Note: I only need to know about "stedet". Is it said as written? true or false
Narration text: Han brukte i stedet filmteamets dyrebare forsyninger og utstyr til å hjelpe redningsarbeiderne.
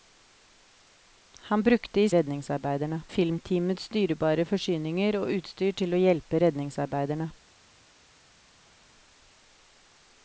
false